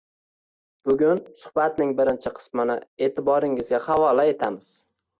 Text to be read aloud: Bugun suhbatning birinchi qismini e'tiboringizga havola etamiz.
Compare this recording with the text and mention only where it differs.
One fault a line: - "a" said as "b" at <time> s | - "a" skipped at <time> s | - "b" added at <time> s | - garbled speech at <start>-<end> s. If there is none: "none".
none